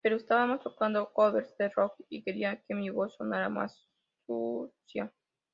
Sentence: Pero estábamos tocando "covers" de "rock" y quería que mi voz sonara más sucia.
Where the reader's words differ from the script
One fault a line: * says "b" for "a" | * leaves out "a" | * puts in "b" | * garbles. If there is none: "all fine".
all fine